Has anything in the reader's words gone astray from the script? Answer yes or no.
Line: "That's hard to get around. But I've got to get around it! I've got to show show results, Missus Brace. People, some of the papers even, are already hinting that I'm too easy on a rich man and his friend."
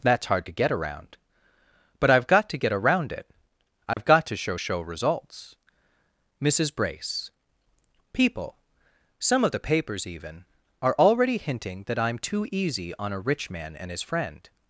no